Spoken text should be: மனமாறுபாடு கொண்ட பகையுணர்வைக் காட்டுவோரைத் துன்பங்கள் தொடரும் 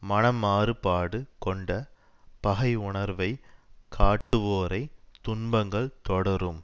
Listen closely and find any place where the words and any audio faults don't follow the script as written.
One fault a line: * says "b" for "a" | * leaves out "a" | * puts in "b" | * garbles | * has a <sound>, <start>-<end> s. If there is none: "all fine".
* has a dropout, 4.2-4.3 s